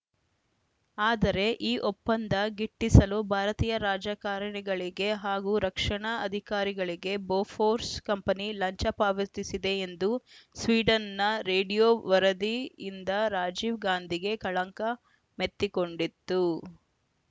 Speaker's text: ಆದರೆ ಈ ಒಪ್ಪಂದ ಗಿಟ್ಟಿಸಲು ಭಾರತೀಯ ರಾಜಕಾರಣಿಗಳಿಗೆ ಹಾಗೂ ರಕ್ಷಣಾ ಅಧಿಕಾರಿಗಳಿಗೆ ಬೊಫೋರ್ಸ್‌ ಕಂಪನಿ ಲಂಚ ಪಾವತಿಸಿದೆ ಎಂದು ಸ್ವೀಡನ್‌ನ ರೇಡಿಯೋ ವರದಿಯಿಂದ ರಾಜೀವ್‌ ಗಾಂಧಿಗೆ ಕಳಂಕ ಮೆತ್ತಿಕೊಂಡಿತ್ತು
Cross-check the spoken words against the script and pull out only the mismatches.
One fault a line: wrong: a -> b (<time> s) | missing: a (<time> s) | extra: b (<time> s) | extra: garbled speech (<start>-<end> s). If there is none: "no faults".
no faults